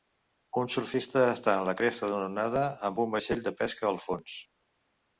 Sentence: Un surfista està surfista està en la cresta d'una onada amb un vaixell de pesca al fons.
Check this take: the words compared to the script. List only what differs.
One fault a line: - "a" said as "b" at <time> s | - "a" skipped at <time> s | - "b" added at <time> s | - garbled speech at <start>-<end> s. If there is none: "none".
- "surfista està" skipped at 1.6 s